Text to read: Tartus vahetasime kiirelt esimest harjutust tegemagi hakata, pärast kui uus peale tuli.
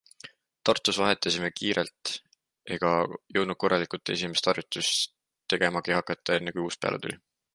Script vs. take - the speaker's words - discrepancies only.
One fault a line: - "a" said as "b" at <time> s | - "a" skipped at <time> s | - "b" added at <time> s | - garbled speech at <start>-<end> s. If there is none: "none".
- "ega jõudnud korralikult" added at 2.8 s
- "pärast" said as "enne" at 6.4 s